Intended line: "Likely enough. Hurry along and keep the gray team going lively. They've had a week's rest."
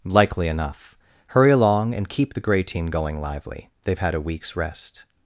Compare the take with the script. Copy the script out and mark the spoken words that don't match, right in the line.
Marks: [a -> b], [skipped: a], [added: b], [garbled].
"Likely enough. Hurry along and keep the gray team going lively. They've had a week's rest."